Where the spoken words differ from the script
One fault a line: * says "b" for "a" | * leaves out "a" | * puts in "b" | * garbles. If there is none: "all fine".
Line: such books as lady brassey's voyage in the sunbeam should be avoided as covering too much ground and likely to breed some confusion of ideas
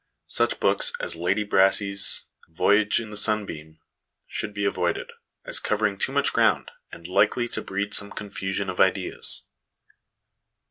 all fine